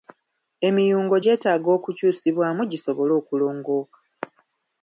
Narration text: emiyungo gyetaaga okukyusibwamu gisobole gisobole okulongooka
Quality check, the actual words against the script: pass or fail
fail